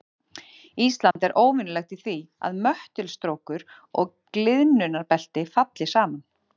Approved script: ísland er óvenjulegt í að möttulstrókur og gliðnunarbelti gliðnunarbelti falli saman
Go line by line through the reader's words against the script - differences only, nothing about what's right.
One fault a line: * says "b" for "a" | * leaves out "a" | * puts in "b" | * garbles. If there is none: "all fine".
* puts in "því"
* leaves out "gliðnunarbelti"